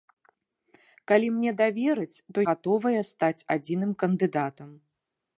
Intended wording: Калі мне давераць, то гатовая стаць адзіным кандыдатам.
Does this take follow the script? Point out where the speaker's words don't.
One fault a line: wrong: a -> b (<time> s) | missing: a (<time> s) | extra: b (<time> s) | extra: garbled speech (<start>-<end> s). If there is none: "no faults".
no faults